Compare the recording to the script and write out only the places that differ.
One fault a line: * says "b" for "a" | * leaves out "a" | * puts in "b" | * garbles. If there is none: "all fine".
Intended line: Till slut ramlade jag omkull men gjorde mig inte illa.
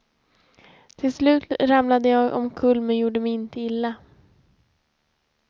all fine